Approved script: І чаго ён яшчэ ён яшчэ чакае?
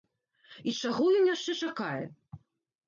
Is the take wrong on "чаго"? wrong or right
right